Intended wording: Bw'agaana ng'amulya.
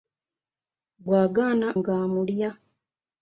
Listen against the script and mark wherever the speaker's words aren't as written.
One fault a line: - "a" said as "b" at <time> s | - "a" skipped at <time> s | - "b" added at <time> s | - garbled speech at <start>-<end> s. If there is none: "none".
none